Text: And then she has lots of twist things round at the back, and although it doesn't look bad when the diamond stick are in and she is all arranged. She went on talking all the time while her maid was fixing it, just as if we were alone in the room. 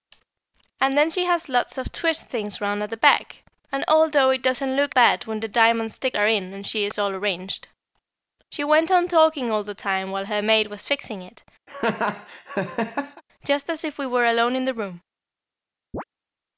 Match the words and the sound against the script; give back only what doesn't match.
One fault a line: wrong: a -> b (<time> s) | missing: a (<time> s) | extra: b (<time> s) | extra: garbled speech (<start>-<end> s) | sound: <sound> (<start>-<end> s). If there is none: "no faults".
sound: laugh (11.7-13.2 s)
sound: chirp (15.9-16.0 s)